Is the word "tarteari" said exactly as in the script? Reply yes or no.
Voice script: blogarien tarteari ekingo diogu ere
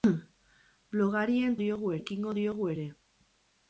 no